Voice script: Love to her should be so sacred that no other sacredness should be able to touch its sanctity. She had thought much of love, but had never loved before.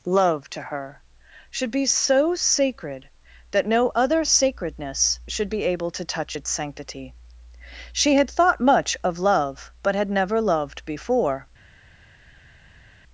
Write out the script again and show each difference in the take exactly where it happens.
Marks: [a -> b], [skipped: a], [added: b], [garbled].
Love to her should be so sacred that no other sacredness should be able to touch its sanctity. She had thought much of love, but had never loved before.